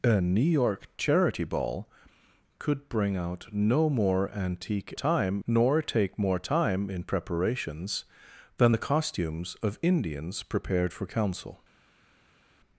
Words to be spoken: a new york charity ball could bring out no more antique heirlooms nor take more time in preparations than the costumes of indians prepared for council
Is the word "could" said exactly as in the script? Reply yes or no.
yes